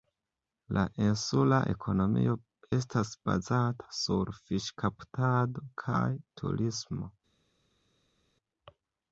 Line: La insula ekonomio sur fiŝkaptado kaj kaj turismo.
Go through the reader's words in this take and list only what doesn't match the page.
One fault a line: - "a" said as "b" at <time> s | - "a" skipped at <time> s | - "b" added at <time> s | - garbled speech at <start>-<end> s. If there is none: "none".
- "estas bazata" added at 2.8 s
- "kaj" skipped at 6.1 s